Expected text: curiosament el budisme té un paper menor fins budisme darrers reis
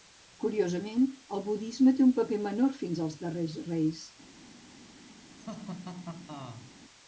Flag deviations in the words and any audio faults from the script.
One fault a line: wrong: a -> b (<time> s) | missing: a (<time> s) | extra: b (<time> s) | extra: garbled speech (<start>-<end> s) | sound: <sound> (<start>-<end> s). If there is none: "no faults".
wrong: budisme -> als (3.1 s)
sound: laugh (5.4-6.7 s)